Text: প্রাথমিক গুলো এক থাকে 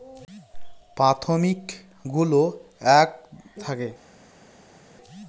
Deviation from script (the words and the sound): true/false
false